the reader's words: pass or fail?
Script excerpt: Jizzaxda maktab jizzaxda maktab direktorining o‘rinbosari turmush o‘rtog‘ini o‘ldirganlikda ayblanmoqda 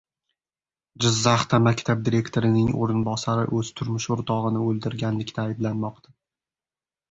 fail